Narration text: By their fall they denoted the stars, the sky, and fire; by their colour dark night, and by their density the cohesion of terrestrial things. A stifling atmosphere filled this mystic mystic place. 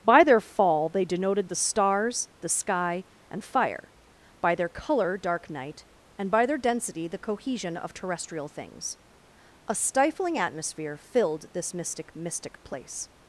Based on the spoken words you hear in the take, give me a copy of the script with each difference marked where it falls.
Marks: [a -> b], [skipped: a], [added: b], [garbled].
By their fall they denoted the stars, the sky, and fire; by their colour dark night, and by their density the cohesion of terrestrial things. A stifling atmosphere filled this mystic mystic place.